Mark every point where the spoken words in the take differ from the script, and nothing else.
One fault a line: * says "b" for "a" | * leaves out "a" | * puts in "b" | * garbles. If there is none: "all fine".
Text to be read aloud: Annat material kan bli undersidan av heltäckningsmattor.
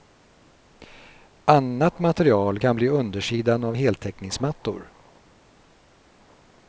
all fine